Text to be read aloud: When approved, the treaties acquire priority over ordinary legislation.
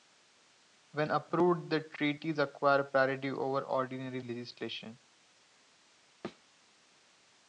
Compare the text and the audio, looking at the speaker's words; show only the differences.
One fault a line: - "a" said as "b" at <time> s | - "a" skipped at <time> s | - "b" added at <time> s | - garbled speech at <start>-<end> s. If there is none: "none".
none